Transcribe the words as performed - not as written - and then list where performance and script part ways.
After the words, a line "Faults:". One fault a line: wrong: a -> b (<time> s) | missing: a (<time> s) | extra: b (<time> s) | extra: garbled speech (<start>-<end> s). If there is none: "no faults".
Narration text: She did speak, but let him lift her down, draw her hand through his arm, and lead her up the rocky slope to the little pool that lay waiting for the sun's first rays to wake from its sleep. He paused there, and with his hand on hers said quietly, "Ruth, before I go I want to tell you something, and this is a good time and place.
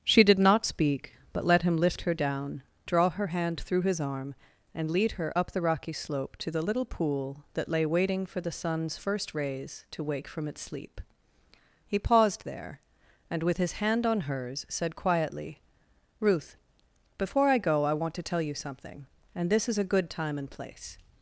She did not speak, but let him lift her down, draw her hand through his arm, and lead her up the rocky slope to the little pool that lay waiting for the sun's first rays to wake from its sleep. He paused there, and with his hand on hers said quietly, "Ruth, before I go I want to tell you something, and this is a good time and place.
Faults:
extra: not (0.4 s)